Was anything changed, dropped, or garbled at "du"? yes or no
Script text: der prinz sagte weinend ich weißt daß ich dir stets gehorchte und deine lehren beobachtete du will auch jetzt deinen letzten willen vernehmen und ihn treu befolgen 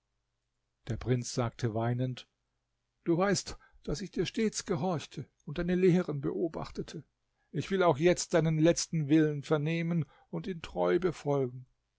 yes